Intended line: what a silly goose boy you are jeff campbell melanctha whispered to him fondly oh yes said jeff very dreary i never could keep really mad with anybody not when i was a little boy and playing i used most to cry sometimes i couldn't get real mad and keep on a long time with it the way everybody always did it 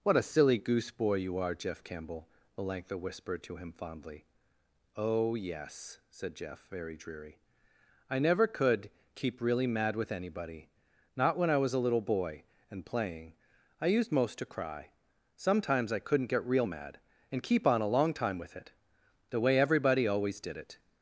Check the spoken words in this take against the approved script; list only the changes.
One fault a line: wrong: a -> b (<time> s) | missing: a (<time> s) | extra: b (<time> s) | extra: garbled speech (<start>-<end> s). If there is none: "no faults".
no faults